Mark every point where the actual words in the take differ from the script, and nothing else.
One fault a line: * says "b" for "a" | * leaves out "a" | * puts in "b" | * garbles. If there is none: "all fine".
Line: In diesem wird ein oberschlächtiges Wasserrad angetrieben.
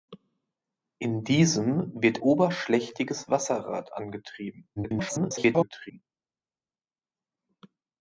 * leaves out "ein"
* garbles